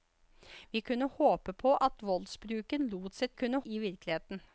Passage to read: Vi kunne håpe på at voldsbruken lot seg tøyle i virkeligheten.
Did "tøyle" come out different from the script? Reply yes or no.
yes